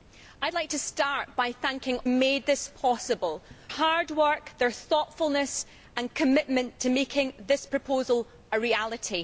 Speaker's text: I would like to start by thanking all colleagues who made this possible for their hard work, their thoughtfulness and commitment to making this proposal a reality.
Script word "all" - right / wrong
wrong